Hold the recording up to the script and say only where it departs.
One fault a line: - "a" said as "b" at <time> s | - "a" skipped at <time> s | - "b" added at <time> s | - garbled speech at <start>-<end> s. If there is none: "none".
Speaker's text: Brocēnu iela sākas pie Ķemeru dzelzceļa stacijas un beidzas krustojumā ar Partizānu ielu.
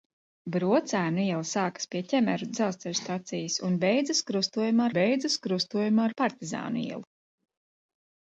- "beidzas krustojumā" added at 5.0 s